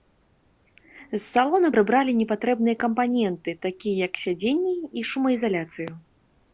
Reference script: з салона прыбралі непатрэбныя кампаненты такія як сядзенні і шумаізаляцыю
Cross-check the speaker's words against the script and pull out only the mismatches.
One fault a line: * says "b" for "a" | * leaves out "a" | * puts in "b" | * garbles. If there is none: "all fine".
all fine